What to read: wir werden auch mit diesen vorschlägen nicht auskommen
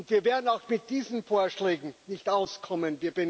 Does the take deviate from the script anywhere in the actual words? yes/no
no